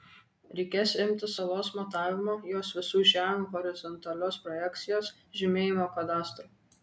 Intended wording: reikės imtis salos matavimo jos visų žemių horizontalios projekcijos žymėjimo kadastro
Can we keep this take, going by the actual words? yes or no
yes